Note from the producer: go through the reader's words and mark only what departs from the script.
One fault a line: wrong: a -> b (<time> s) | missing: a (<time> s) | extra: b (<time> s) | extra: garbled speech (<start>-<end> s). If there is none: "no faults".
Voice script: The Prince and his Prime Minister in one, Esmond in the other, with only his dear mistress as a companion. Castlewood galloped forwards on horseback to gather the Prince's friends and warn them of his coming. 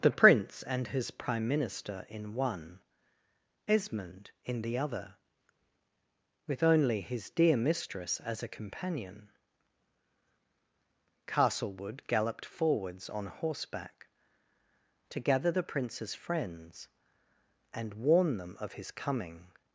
no faults